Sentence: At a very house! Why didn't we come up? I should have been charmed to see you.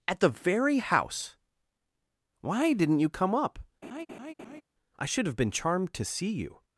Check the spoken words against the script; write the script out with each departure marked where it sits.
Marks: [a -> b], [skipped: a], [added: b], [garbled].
At [a -> the] very house! Why didn't [we -> you] come up? I should have been charmed to see you.